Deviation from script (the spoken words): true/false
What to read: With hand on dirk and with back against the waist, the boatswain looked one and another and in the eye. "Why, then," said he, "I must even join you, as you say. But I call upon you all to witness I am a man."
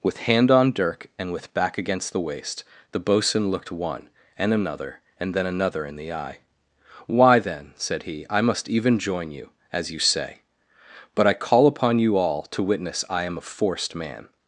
true